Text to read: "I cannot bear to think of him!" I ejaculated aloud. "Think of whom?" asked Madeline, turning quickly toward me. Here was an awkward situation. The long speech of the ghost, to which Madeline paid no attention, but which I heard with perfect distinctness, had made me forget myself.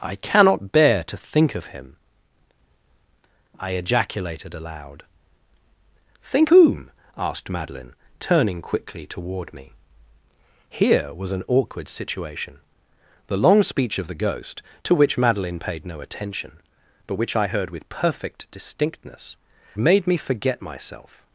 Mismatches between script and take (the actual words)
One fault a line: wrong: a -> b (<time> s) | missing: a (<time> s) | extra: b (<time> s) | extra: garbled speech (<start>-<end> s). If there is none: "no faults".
missing: of (6.5 s)
missing: had (19.4 s)